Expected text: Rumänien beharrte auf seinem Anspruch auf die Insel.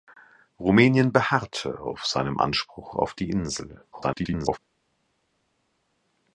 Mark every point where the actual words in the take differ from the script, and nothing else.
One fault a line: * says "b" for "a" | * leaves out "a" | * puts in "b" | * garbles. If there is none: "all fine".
* garbles